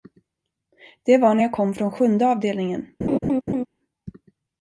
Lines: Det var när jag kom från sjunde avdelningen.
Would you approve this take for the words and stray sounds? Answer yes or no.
no